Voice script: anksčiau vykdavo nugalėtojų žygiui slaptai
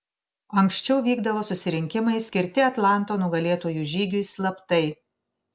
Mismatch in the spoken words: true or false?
true